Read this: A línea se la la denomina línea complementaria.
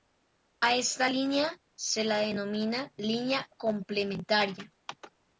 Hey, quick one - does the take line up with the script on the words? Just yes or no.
no